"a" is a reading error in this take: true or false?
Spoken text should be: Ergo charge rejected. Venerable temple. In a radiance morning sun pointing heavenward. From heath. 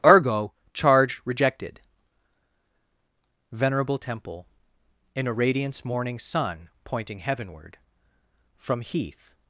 false